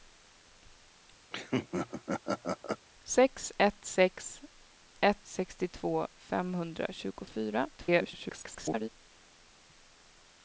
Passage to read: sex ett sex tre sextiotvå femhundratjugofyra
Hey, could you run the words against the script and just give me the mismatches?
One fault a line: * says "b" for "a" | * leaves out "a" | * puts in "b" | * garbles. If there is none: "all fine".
* says "ett" for "tre"
* garbles